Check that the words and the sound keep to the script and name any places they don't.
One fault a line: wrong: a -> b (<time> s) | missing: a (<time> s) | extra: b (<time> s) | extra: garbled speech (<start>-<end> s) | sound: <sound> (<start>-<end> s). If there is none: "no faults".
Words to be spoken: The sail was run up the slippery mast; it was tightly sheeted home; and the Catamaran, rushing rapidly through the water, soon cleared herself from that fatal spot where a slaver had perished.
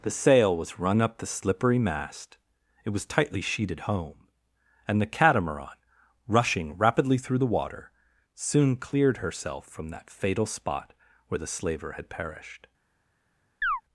wrong: a -> the (11.4 s)
sound: chirp (13.6-13.8 s)